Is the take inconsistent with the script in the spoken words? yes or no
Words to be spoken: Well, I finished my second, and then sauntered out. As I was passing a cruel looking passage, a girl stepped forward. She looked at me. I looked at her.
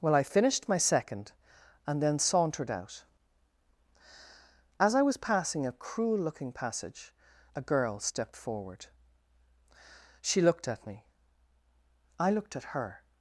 no